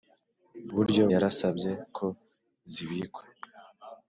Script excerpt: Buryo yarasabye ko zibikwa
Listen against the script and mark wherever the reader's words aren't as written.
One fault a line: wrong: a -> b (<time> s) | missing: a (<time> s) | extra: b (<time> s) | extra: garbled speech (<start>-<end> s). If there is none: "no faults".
no faults